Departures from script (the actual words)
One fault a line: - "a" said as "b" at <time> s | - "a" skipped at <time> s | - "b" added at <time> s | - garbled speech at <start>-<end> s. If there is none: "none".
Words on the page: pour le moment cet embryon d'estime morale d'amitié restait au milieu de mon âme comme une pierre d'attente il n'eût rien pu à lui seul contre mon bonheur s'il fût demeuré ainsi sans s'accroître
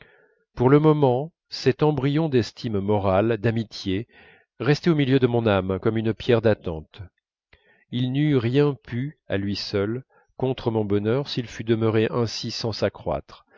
none